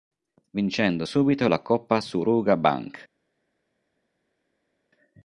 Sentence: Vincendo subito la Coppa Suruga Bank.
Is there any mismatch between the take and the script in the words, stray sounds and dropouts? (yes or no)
no